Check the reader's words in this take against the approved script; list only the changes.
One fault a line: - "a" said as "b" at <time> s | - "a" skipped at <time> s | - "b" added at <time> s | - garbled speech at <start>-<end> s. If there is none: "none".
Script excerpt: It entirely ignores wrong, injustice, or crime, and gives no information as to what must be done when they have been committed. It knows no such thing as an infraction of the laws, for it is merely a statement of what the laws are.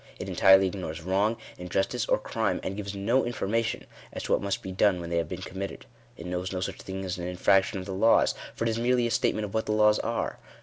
none